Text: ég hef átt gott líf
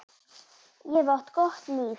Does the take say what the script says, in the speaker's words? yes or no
yes